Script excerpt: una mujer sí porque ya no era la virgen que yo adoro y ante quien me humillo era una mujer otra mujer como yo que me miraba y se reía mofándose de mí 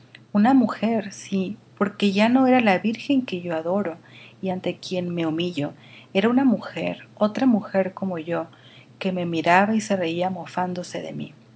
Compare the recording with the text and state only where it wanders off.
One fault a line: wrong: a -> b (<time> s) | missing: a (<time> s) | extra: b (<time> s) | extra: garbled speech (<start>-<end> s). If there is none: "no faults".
no faults